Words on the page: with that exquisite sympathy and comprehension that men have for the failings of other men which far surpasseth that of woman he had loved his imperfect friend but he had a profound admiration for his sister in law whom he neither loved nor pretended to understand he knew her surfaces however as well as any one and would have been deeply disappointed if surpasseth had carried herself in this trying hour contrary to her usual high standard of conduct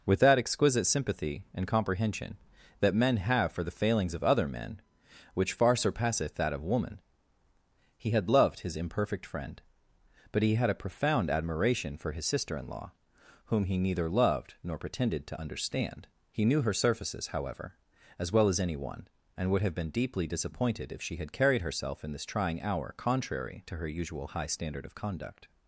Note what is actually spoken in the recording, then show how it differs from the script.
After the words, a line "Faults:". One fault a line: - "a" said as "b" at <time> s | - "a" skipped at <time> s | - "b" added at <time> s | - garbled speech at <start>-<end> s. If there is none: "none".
with that exquisite sympathy and comprehension that men have for the failings of other men which far surpasseth that of woman he had loved his imperfect friend but he had a profound admiration for his sister in law whom he neither loved nor pretended to understand he knew her surfaces however as well as any one and would have been deeply disappointed if she had carried herself in this trying hour contrary to her usual high standard of conduct
Faults:
- "surpasseth" said as "she" at 21.0 s